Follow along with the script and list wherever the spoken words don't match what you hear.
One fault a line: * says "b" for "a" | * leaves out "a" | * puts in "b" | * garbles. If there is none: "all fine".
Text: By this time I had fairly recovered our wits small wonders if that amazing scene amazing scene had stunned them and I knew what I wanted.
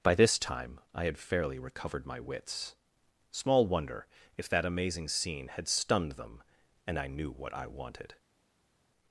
* says "my" for "our"
* says "wonder" for "wonders"
* leaves out "amazing scene"